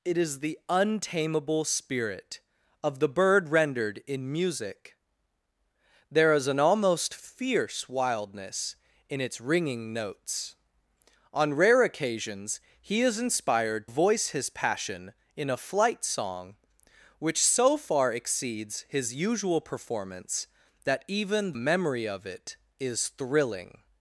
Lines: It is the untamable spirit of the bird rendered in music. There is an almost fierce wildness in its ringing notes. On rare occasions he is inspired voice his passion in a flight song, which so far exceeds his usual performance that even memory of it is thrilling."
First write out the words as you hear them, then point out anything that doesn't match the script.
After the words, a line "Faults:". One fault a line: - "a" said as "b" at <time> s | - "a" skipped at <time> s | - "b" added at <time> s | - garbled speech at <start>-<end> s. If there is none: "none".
It is the untamable spirit of the bird rendered in music. There is an almost fierce wildness in its ringing notes. On rare occasions he is inspired voice his passion in a flight song, which so far exceeds his usual performance that even memory of it is thrilling."
Faults:
none